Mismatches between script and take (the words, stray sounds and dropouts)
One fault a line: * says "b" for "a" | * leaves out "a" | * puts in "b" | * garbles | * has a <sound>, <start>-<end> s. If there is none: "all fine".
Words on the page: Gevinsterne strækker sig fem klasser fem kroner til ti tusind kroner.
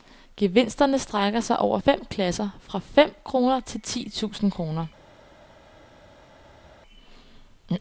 * puts in "over"
* puts in "fra"